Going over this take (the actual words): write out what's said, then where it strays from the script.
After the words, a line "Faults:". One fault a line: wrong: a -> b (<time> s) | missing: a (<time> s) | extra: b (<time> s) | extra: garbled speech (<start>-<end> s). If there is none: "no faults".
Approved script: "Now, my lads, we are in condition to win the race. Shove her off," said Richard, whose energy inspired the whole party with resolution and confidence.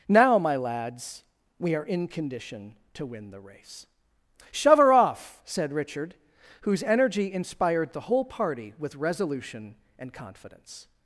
"Now, my lads, we are in condition to win the race. Shove her off," said Richard, whose energy inspired the whole party with resolution and confidence.
Faults:
no faults